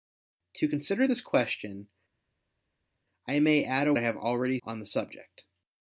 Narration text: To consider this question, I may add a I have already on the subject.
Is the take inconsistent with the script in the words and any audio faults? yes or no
no